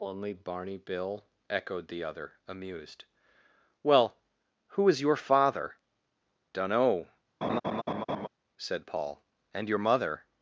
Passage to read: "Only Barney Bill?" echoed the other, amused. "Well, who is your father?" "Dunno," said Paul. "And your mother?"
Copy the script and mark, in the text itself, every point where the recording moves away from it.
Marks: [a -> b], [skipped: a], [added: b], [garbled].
"Only Barney Bill?" echoed the other, amused. "Well, who is your father?" "Dunno," said Paul. "And your mother?"